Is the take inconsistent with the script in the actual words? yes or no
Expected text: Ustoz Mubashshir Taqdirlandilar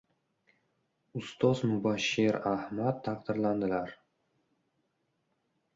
yes